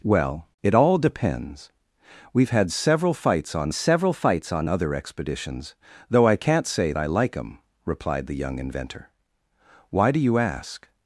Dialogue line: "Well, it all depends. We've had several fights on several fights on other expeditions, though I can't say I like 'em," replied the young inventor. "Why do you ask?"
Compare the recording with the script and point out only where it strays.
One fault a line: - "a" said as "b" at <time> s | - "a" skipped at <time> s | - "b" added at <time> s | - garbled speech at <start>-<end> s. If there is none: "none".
none